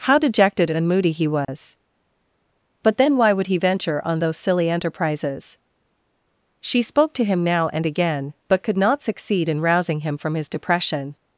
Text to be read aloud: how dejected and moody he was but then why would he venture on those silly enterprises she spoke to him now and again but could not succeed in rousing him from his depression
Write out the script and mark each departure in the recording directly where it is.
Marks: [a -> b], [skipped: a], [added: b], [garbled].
how dejected and moody he was but then why would he venture on those silly enterprises she spoke to him now and again but could not succeed in rousing him from his depression